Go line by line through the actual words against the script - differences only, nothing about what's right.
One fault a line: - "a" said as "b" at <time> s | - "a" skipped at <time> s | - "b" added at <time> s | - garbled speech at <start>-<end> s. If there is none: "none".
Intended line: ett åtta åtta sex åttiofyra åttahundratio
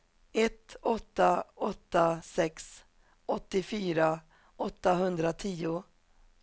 none